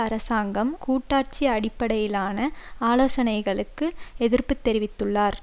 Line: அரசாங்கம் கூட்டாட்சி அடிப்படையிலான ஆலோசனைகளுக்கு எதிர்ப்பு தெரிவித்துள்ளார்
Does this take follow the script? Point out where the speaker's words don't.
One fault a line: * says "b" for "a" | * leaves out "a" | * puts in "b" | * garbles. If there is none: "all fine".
all fine